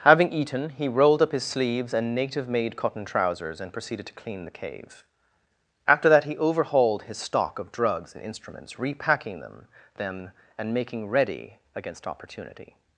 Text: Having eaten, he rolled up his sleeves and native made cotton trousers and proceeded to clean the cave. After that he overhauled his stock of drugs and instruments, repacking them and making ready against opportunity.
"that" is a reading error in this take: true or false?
false